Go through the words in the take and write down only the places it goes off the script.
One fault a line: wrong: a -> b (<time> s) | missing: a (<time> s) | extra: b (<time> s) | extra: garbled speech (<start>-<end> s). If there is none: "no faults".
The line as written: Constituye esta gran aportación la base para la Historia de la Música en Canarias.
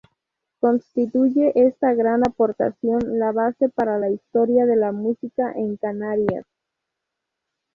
no faults